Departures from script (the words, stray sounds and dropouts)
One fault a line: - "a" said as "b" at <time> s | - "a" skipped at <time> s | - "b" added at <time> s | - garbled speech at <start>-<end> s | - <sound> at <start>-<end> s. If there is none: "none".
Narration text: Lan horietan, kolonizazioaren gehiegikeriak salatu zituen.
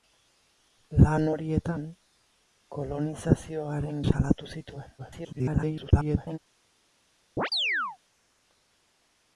- "gehiegikeriak" skipped at 4.0 s
- garbled speech at 5.0-6.4 s
- chirp at 7.4-8.0 s